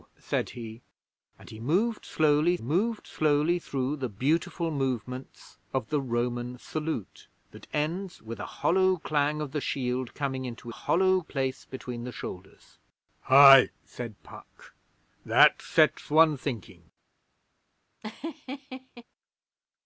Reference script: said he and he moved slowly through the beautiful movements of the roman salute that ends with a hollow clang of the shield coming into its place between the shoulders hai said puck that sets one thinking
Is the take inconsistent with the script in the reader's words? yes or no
yes